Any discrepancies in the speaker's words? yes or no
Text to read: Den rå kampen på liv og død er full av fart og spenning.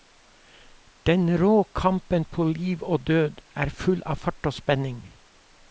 no